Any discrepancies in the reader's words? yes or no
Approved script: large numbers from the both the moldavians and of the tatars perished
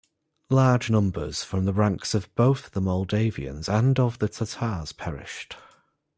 yes